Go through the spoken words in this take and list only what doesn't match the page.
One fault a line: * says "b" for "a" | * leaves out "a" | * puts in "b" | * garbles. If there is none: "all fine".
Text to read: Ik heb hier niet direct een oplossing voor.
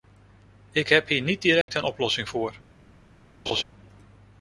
all fine